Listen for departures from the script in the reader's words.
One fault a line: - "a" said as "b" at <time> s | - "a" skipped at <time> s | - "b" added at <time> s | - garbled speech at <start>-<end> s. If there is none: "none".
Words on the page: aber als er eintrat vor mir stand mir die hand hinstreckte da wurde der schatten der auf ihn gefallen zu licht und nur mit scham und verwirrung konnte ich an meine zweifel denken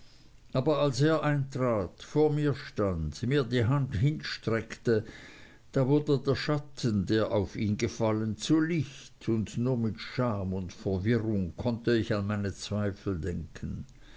none